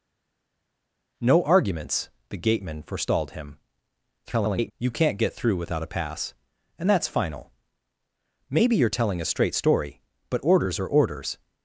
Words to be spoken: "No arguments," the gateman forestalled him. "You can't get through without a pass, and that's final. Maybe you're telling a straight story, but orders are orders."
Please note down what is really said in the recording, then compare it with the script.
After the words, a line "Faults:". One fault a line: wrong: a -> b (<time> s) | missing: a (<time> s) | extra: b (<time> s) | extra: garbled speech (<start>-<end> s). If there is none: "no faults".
"No arguments," the gateman forestalled him. [garbled] "You can't get through without a pass, and that's final. Maybe you're telling a straight story, but orders are orders."
Faults:
extra: garbled speech (4.2-4.7 s)